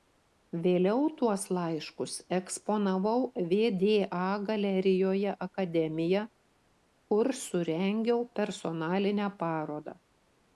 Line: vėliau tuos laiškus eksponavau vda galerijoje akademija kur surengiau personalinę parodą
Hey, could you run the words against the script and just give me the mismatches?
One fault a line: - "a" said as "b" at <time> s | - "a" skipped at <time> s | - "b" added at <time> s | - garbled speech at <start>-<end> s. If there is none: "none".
none